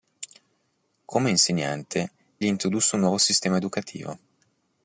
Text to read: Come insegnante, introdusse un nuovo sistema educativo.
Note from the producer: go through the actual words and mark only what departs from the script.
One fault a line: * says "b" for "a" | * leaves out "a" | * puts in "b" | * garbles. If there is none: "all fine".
all fine